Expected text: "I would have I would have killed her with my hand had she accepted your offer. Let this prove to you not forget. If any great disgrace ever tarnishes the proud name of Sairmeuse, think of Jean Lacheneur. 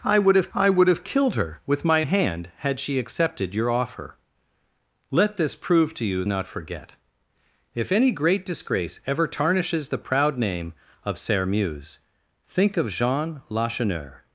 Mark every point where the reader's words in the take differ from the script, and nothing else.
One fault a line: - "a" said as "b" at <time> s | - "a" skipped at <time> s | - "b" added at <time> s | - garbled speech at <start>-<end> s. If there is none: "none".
none